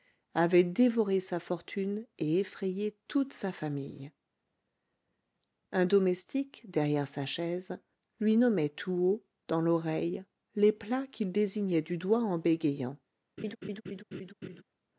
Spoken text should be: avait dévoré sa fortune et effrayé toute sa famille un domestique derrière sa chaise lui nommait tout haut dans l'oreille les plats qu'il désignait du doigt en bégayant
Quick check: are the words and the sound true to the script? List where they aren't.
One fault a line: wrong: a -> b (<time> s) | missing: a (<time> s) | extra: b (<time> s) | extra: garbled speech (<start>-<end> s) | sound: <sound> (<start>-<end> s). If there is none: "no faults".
sound: laugh (13.4-14.6 s)